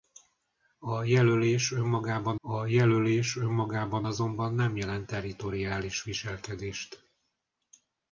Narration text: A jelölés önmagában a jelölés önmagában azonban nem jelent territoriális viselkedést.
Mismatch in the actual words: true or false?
false